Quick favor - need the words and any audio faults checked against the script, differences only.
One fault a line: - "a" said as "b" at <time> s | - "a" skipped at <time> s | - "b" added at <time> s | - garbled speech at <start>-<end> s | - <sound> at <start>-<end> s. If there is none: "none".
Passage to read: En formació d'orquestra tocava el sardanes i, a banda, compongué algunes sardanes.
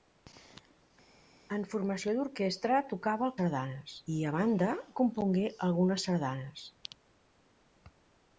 none